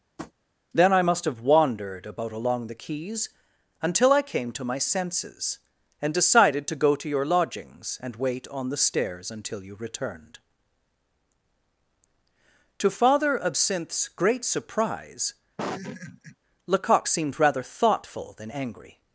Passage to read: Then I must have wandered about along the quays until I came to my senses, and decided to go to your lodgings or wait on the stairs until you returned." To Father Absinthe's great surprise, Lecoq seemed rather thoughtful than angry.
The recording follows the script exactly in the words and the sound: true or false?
false